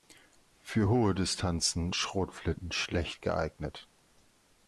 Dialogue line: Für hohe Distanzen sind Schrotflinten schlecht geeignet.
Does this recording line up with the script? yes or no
no